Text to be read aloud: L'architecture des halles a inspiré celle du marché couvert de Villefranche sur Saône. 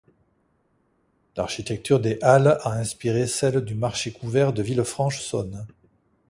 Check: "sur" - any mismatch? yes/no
yes